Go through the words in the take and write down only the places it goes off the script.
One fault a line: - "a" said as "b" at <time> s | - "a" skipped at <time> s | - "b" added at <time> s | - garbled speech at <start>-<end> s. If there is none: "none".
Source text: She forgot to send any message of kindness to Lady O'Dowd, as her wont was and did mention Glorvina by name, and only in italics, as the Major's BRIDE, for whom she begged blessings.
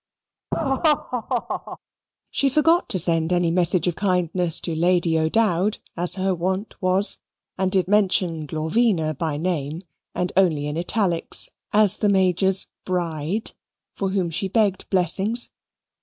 none